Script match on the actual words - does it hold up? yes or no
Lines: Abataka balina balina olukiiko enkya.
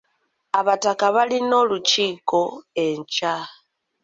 no